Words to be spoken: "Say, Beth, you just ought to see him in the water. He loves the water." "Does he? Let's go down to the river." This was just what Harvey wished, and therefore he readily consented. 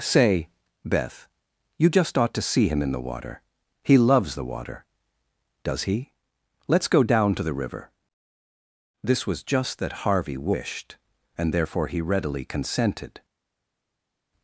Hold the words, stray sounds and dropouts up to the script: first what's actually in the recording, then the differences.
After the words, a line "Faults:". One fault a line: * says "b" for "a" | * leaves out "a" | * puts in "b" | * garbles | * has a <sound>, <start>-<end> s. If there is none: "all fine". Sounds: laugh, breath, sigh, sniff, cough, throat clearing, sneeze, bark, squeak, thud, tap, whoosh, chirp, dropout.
"Say, Beth, you just ought to see him in the water. He loves the water." "Does he? Let's go down to the river." This was just that Harvey wished, and therefore he readily consented.
Faults:
* says "that" for "what"